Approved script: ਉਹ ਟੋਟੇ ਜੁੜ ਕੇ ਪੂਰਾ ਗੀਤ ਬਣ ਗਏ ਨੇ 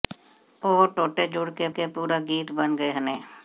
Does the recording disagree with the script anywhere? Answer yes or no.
yes